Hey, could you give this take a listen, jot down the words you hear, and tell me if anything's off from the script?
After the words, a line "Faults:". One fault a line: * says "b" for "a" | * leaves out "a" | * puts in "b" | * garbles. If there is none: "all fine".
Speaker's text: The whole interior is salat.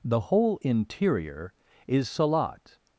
The whole interior is salat.
Faults:
all fine